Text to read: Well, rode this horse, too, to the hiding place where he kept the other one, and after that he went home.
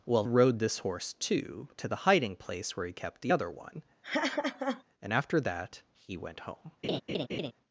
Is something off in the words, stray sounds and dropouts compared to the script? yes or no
yes